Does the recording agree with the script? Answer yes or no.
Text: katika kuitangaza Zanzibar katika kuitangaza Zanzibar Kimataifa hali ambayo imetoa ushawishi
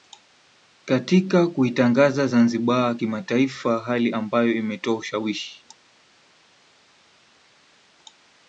no